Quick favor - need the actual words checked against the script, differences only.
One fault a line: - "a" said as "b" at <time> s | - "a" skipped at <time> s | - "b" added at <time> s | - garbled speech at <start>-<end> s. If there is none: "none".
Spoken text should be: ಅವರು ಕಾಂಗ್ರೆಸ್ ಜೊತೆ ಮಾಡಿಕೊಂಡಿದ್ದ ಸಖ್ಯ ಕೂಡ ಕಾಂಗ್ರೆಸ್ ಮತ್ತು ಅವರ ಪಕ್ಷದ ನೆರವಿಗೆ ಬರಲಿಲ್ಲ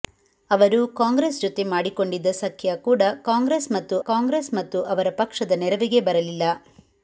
- "ಕಾಂಗ್ರೆಸ್ ಮತ್ತು" added at 4.0 s